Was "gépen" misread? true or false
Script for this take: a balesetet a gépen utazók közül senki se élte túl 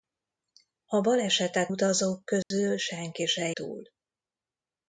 true